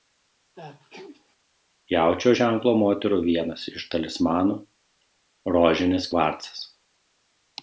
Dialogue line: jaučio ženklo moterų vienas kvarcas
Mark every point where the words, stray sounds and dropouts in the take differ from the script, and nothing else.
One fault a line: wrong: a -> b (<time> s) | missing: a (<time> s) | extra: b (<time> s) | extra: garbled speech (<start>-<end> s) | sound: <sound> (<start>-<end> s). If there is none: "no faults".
sound: sneeze (0.6-1.4 s)
extra: iš talismanų rožinis (3.7 s)